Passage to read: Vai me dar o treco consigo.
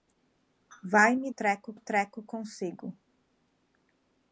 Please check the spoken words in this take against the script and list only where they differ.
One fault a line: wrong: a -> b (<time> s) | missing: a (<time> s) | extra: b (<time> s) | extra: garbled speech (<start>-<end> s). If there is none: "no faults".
wrong: dar -> treco (1.3 s)